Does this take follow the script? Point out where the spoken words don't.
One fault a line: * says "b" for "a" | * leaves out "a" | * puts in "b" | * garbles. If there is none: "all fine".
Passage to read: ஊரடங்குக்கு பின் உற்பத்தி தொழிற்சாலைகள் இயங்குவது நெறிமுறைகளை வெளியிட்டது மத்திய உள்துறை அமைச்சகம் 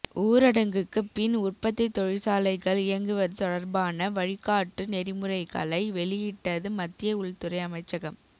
* puts in "தொடர்பான வழிகாட்டு"